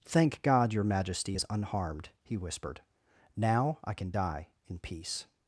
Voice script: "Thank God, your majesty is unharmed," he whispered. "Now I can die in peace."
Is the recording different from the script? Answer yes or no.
no